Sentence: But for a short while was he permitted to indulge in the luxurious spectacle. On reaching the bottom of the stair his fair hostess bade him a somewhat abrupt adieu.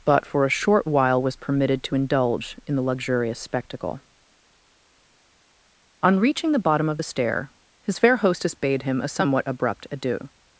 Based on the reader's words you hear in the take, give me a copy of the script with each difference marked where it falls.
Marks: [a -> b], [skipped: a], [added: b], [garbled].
But for a short while was [skipped: he] permitted to indulge in the luxurious spectacle. On reaching the bottom of the stair his fair hostess bade him a somewhat abrupt adieu.